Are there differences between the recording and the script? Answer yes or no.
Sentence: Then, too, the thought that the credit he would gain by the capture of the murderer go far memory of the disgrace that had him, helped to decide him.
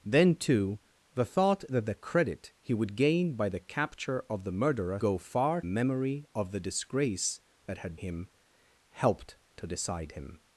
no